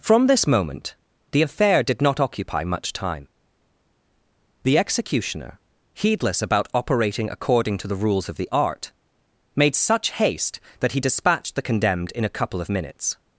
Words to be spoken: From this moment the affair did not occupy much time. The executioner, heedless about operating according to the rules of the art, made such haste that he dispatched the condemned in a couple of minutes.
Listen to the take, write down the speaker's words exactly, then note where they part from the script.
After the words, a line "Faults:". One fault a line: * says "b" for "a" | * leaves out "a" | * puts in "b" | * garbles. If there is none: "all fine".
From this moment the affair did not occupy much time. The executioner, heedless about operating according to the rules of the art, made such haste that he dispatched the condemned in a couple of minutes.
Faults:
all fine